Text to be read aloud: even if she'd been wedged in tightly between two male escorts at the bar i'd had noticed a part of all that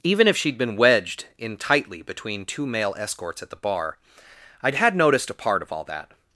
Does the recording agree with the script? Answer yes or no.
yes